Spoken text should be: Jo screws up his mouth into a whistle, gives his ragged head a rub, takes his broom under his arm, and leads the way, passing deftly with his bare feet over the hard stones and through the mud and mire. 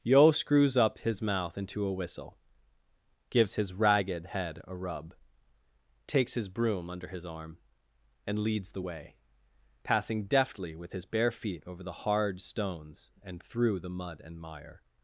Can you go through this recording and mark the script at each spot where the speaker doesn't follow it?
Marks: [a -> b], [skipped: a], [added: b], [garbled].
[Jo -> Yo] screws up his mouth into a whistle, gives his ragged head a rub, takes his broom under his arm, and leads the way, passing deftly with his bare feet over the hard stones and through the mud and mire.